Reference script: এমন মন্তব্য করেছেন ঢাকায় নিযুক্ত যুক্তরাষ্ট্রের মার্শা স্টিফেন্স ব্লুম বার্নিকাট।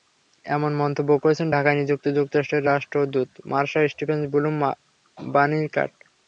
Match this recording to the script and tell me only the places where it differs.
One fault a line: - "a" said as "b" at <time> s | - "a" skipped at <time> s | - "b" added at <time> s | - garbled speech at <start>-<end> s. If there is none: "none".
- "রাষ্ট্রদূত" added at 2.7 s